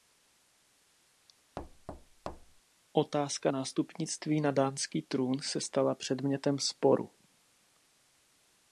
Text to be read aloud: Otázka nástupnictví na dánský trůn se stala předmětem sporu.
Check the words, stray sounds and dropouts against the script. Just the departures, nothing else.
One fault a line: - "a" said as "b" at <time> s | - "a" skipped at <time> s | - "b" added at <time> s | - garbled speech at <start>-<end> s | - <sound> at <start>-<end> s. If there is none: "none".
- thud at 1.6-2.6 s